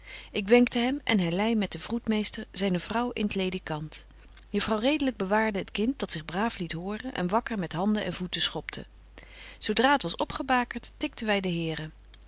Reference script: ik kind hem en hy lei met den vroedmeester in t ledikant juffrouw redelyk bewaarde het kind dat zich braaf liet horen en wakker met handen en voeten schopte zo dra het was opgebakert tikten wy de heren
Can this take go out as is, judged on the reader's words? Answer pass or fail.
fail